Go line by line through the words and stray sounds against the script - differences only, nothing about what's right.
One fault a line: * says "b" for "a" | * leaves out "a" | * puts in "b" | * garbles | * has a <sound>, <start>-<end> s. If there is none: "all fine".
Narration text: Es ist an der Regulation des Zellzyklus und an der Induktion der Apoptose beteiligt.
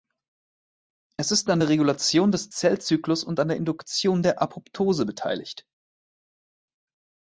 all fine